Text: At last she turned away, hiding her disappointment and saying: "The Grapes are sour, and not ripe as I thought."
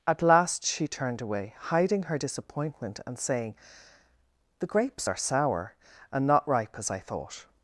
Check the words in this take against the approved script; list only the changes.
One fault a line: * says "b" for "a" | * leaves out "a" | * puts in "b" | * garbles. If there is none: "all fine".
all fine